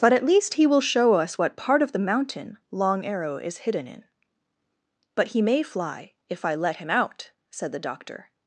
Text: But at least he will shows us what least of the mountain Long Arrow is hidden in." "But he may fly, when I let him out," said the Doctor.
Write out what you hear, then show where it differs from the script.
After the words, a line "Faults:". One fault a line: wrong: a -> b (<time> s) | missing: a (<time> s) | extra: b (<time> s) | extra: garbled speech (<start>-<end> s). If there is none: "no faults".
But at least he will show us what part of the mountain Long Arrow is hidden in." "But he may fly, if I let him out," said the Doctor.
Faults:
wrong: shows -> show (0.8 s)
wrong: least -> part (1.6 s)
wrong: when -> if (6.3 s)